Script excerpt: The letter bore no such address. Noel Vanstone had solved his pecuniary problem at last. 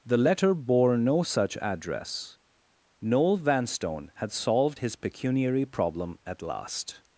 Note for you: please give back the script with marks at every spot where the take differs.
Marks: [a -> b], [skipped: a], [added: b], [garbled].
The letter bore no such address. Noel Vanstone had solved his pecuniary problem at last.